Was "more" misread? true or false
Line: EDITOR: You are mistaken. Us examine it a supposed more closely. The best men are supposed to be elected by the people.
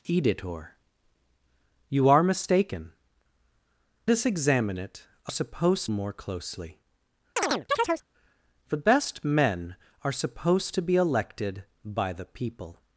false